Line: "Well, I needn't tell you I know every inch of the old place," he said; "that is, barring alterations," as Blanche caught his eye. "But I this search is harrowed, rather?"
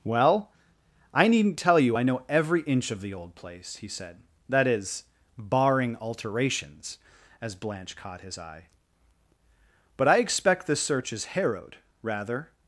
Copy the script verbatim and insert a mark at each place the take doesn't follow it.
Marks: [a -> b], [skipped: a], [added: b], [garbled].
"Well, I needn't tell you I know every inch of the old place," he said; "that is, barring alterations," as Blanche caught his eye. "But I [added: expect] this search is harrowed, rather?"